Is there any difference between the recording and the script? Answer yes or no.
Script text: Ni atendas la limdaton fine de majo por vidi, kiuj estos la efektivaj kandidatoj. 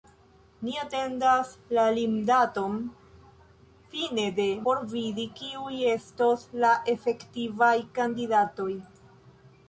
yes